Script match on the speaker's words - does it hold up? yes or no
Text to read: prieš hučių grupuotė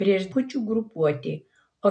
yes